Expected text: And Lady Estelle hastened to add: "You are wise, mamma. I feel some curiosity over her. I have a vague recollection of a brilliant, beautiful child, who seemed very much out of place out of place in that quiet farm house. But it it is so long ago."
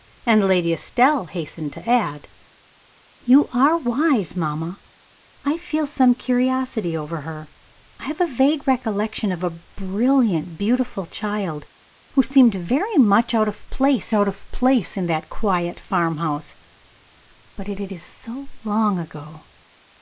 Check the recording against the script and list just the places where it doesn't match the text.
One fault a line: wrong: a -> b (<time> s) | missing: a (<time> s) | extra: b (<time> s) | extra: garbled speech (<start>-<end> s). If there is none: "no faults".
no faults